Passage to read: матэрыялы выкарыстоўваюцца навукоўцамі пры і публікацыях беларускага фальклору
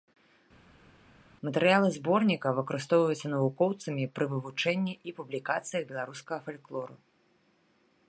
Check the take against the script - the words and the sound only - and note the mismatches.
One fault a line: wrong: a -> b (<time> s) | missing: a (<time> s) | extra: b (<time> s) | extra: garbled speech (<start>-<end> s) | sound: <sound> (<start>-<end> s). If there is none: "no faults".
extra: зборніка (1.9 s)
extra: вывучэнні (4.3 s)